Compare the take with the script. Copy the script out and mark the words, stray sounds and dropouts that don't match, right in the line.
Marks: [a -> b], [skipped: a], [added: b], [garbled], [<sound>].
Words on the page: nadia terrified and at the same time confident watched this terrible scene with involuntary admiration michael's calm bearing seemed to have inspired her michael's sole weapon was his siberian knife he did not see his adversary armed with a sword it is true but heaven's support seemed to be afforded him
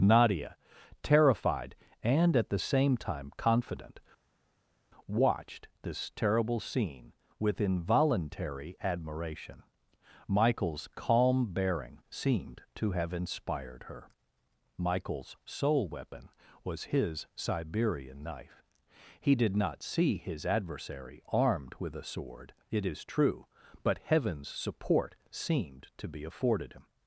nadia terrified and at the same time confident watched this terrible scene with involuntary admiration michael's calm bearing seemed to have inspired her michael's sole weapon was his siberian knife he did not see his adversary armed with a sword it is true but heaven's support seemed to be afforded him